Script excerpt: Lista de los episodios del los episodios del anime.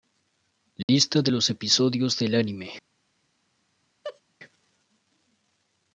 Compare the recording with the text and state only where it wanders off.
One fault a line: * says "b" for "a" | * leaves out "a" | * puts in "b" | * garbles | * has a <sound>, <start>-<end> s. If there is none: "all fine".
* has a dropout, 0.8-0.9 s
* leaves out "los episodios del"
* has a laugh, 4.0-4.2 s